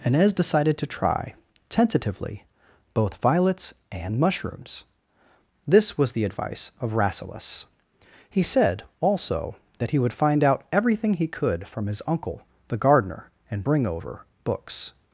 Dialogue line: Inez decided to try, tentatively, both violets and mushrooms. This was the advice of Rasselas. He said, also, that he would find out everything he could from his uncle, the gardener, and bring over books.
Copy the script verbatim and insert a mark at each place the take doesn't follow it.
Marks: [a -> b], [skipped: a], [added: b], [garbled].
Inez decided to try, tentatively, both violets and mushrooms. This was the advice of Rasselas. He said, also, that he would find out everything he could from his uncle, the gardener, and bring over books.